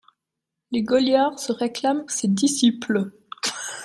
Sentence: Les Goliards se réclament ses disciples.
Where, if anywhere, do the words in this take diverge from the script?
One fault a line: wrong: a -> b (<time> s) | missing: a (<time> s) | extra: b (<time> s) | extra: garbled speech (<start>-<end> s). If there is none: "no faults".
no faults